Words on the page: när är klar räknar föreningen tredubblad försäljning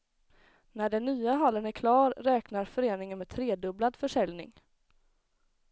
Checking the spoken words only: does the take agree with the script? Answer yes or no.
no